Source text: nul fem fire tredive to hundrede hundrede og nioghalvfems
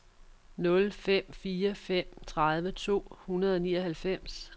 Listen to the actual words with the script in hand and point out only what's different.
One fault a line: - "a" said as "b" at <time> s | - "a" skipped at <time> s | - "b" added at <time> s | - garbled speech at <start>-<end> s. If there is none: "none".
- "fem" added at 1.7 s
- "hundrede" skipped at 3.5 s